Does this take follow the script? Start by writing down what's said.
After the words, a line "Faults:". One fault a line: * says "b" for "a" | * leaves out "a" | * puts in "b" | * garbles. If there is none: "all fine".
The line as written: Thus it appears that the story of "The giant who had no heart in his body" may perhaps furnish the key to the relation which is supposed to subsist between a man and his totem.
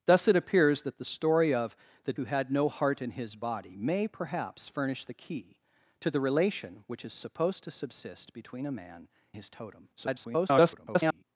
Thus it appears that the story of "The who had no heart in his body" may perhaps furnish the key to the relation which is supposed to subsist between a man his totem. [garbled]
Faults:
* leaves out "giant"
* leaves out "and"
* garbles